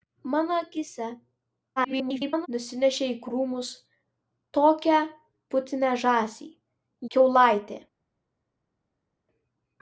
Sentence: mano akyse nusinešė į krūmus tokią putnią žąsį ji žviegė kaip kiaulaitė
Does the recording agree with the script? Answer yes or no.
no